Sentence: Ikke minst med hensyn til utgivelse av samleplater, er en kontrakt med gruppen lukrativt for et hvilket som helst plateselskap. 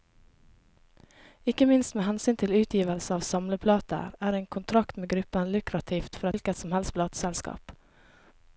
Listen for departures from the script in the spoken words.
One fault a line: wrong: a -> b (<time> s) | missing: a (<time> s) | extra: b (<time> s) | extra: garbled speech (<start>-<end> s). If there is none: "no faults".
missing: et (6.3 s)